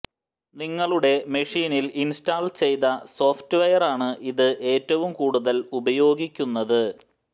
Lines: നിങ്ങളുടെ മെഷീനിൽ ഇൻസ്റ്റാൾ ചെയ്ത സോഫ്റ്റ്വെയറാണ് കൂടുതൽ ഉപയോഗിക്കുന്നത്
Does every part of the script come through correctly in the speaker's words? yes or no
no